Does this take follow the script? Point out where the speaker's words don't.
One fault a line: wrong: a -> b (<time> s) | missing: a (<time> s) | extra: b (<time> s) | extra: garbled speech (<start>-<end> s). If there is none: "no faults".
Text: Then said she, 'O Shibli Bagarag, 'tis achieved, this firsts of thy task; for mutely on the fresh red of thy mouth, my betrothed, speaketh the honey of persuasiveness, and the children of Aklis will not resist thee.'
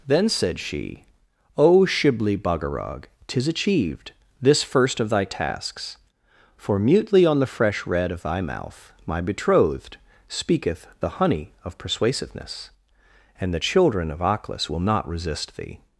wrong: firsts -> first (4.6 s)
wrong: task -> tasks (5.2 s)